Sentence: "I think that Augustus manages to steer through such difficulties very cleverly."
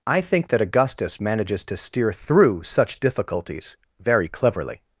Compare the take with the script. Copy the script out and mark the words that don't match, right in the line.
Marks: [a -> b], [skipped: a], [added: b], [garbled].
"I think that Augustus manages to steer through such difficulties very cleverly."